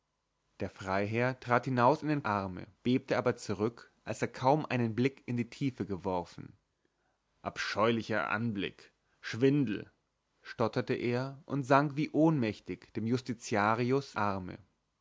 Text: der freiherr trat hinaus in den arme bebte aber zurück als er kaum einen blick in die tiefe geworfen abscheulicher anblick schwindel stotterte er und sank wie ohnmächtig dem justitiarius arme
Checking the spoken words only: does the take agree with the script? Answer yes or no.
yes